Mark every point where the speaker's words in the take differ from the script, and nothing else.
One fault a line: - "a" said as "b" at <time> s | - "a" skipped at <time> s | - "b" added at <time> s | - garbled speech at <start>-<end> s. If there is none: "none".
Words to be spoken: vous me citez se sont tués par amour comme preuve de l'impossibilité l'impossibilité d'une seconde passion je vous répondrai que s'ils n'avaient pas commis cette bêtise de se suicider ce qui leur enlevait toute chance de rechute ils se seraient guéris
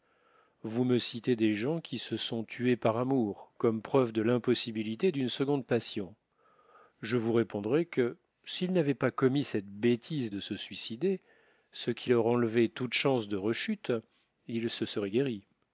- "des gens qui" added at 1.4 s
- "l'impossibilité" skipped at 5.1 s